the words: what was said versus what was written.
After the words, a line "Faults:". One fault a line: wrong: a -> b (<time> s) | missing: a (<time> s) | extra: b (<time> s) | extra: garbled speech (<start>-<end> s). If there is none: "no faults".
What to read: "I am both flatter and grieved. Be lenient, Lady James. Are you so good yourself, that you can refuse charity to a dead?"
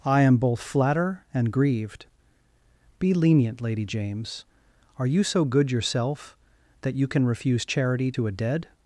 "I am both flatter and grieved. Be lenient, Lady James. Are you so good yourself, that you can refuse charity to a dead?"
Faults:
no faults